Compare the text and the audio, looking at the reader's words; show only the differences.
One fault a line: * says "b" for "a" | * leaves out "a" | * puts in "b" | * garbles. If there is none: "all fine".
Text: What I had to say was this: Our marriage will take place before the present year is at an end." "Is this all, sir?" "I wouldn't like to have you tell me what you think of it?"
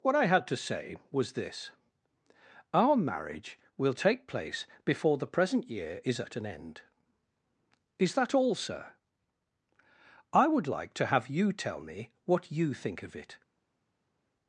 * says "that" for "this"
* says "would" for "wouldn't"